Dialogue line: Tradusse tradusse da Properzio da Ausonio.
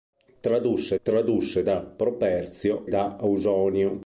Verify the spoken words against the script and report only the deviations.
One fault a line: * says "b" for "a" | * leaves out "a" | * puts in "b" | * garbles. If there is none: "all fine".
all fine